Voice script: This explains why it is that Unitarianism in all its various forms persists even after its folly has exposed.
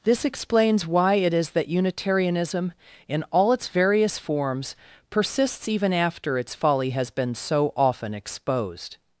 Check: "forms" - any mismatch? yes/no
no